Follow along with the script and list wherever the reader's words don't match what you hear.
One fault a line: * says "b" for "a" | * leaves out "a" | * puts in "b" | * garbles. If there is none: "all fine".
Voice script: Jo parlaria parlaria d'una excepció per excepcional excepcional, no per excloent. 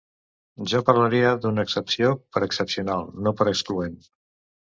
* leaves out "parlaria"
* leaves out "excepcional"